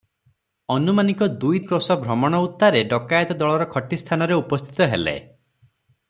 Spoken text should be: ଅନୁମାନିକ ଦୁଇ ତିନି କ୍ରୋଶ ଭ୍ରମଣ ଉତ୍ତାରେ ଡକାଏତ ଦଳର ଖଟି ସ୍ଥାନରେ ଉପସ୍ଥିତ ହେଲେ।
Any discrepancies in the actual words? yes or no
yes